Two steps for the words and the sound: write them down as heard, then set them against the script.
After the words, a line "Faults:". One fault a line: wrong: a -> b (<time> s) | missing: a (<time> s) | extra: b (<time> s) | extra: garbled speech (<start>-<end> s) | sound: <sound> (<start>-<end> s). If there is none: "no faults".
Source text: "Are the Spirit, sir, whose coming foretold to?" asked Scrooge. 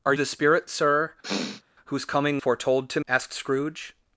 "Are the Spirit, sir, whose coming foretold to?" asked Scrooge.
Faults:
sound: sniff (1.2-1.6 s)